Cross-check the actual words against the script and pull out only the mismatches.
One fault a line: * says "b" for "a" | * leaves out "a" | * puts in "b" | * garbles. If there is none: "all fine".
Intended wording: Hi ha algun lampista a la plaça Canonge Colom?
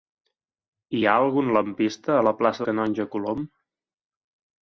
all fine